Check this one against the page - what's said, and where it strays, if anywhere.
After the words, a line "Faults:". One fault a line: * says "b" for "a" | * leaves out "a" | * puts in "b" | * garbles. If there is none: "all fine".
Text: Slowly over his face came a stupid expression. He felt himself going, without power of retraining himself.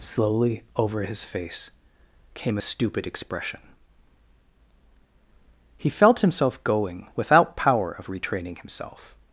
Slowly over his face came a stupid expression. He felt himself going, without power of retraining himself.
Faults:
all fine